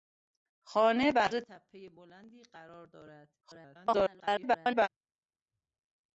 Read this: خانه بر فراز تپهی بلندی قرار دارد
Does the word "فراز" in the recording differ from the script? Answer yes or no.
yes